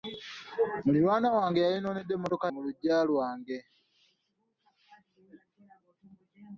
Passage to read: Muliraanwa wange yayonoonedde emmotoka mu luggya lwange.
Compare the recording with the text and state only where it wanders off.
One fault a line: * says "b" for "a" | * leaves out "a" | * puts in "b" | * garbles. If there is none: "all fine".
all fine